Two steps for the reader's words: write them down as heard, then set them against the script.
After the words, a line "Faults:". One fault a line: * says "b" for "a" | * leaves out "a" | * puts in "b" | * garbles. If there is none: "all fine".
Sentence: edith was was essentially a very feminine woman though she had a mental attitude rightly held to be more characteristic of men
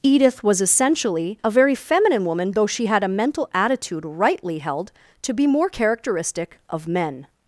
edith was essentially a very feminine woman though she had a mental attitude rightly held to be more characteristic of men
Faults:
* leaves out "was"